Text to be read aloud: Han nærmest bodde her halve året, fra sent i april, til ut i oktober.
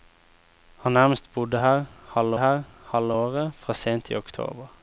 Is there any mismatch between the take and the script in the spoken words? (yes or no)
yes